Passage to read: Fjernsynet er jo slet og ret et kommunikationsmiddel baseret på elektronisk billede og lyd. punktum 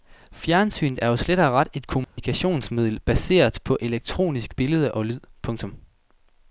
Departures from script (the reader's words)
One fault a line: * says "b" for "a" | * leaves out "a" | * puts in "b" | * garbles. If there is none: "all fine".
all fine